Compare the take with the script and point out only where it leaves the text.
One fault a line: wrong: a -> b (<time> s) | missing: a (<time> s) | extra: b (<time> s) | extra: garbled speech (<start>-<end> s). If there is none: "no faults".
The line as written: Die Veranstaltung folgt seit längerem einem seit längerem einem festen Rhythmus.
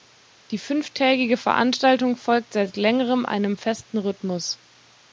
extra: fünftägige (0.6 s)
missing: seit längerem einem (3.5 s)